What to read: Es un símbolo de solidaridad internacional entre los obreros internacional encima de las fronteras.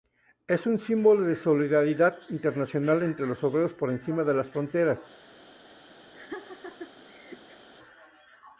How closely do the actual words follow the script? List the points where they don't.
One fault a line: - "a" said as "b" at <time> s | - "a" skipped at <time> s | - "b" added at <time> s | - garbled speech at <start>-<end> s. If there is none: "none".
- "internacional" said as "por" at 3.7 s